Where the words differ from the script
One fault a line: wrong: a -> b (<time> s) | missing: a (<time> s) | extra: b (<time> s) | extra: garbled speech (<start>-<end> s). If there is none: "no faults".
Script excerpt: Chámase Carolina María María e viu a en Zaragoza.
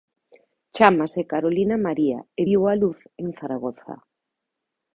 missing: María (2.2 s)
extra: luz (2.8 s)